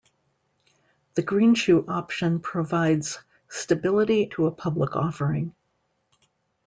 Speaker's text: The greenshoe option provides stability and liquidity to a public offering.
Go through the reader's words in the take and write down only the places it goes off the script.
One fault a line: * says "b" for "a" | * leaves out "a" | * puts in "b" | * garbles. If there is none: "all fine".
* leaves out "and liquidity"